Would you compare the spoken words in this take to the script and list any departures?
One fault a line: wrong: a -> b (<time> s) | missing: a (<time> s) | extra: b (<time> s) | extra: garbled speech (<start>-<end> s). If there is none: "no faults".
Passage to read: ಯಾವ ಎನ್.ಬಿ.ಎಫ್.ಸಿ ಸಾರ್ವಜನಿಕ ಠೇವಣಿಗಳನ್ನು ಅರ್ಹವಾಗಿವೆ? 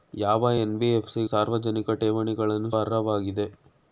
no faults